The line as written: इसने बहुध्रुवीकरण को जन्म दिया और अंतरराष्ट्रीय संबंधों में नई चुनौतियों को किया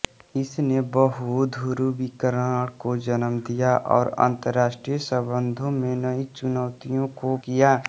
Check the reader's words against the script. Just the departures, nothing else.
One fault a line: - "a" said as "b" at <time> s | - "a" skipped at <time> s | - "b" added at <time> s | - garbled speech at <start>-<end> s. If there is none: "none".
none